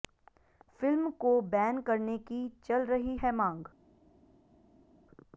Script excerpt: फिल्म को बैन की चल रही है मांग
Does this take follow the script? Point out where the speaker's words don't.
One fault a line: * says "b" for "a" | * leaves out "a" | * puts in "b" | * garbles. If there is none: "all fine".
* puts in "करने"